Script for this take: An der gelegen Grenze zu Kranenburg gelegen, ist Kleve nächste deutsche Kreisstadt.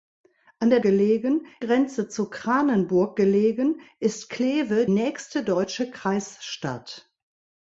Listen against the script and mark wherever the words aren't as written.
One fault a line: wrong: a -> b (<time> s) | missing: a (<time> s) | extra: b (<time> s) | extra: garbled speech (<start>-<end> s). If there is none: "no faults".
no faults